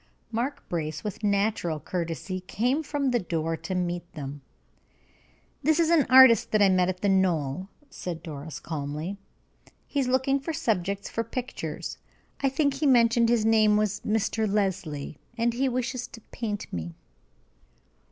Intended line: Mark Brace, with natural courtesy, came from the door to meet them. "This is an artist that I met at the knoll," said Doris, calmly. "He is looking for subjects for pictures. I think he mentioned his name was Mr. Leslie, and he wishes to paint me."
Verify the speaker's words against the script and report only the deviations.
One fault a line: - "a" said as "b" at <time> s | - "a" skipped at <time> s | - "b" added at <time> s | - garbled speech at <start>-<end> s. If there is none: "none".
none